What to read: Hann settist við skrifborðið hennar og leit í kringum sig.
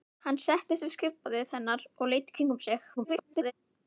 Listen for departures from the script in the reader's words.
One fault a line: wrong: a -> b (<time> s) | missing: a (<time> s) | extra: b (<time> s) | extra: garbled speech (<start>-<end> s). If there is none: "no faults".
extra: garbled speech (3.0-3.5 s)